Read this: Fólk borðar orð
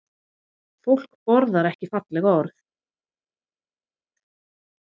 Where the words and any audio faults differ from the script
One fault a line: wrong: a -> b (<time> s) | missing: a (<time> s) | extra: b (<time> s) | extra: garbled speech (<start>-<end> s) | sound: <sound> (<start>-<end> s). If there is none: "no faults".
extra: ekki falleg (1.7 s)